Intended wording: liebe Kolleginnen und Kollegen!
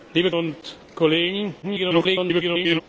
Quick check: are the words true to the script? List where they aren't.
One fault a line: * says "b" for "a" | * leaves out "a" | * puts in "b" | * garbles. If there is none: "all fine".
* leaves out "Kolleginnen"
* garbles